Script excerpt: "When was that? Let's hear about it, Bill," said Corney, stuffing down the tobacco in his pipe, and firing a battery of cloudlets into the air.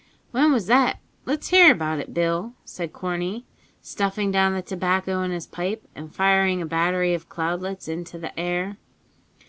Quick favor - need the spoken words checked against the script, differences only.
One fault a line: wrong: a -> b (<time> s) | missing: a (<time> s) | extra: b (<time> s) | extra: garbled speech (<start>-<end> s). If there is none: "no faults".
no faults